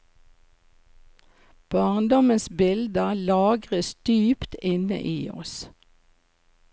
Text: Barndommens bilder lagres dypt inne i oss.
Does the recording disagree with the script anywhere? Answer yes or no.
no